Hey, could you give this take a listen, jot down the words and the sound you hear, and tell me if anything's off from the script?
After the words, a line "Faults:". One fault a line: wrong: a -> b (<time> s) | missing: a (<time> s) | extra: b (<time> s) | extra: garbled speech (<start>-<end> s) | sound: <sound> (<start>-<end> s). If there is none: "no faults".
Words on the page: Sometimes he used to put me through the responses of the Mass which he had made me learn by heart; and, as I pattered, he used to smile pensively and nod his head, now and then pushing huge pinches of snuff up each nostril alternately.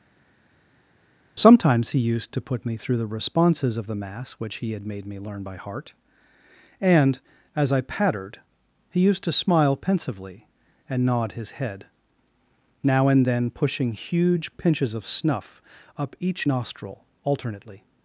Sometimes he used to put me through the responses of the Mass which he had made me learn by heart; and, as I pattered, he used to smile pensively and nod his head, now and then pushing huge pinches of snuff up each nostril alternately.
Faults:
no faults